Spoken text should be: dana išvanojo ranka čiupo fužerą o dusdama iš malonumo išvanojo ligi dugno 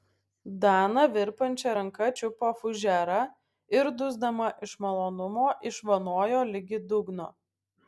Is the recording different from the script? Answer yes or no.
yes